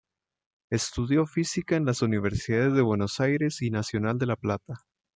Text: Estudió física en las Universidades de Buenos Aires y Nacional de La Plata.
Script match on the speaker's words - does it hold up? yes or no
yes